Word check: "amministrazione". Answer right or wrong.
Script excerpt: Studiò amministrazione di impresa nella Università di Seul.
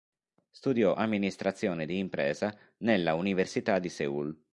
right